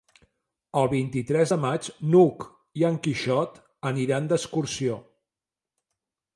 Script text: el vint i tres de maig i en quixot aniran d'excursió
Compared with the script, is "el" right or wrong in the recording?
right